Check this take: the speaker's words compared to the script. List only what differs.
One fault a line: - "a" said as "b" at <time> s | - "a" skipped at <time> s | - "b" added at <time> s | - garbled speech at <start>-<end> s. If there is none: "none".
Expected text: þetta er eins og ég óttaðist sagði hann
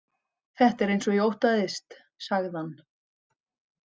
none